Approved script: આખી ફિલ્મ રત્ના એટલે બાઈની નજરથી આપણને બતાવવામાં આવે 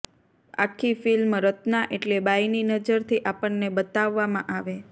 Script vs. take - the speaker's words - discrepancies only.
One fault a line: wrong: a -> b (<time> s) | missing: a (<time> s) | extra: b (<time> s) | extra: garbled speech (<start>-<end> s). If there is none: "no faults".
no faults